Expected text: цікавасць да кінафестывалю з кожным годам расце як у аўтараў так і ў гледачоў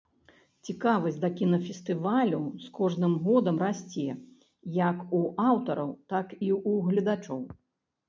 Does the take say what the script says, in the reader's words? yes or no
yes